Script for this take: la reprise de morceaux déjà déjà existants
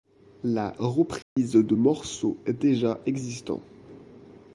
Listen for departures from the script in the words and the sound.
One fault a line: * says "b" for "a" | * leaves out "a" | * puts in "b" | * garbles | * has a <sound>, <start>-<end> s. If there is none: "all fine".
* has a dropout, 1.2-1.4 s
* leaves out "déjà"